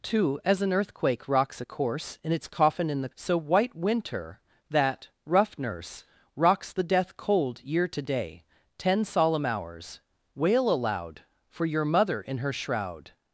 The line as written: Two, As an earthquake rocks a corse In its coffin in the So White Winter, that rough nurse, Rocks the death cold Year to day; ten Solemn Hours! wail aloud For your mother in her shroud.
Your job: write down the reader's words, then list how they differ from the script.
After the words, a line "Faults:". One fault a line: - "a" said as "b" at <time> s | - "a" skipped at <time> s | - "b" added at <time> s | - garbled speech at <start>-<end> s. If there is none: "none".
Two, As an earthquake rocks a corse In its coffin in the So White Winter, that rough nurse, Rocks the death cold Year to day; ten Solemn Hours! wail aloud For your mother in her shroud.
Faults:
none